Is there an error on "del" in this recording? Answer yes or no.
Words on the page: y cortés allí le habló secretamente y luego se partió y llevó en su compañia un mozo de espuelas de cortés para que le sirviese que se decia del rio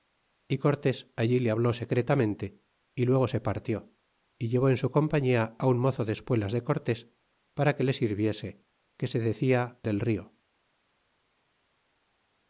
no